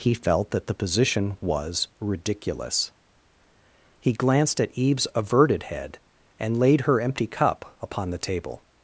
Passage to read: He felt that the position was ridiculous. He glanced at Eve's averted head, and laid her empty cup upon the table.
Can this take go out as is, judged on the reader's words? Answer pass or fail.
pass